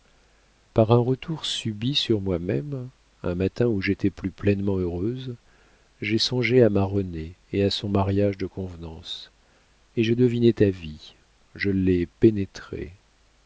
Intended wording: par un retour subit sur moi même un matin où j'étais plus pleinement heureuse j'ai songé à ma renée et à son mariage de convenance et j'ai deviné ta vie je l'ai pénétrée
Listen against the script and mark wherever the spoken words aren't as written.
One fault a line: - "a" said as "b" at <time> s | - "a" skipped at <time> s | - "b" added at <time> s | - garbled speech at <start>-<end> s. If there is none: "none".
none